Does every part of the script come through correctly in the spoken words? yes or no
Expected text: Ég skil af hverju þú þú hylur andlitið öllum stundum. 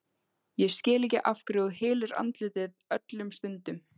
no